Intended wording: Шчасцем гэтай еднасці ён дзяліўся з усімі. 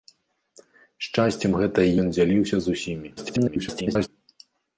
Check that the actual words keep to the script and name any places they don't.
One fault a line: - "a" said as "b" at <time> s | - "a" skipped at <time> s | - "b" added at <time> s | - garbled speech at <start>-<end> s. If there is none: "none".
- "еднасці" skipped at 1.9 s
- garbled speech at 3.2-4.1 s